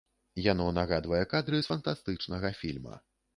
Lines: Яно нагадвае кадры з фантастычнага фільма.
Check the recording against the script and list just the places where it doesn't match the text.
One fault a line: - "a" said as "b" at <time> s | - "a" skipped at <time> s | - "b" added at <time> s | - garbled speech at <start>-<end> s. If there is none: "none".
none